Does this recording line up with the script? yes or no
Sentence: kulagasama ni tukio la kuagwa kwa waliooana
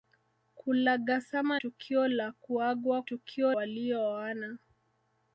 no